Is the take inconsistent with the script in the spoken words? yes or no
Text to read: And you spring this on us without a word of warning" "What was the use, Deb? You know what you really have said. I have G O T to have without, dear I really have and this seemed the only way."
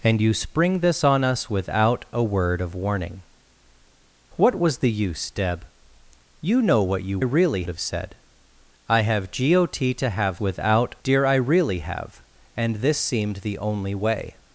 no